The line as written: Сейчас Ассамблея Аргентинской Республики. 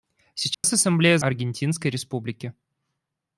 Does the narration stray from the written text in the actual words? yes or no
no